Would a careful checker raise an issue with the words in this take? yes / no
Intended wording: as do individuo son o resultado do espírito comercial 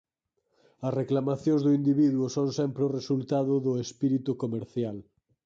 yes